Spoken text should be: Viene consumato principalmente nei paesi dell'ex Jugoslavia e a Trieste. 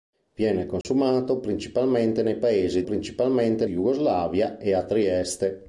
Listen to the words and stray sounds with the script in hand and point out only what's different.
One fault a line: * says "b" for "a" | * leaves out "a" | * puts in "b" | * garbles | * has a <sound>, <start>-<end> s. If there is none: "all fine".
* has a dropout, 0.8-0.8 s
* says "principalmente" for "dell'ex"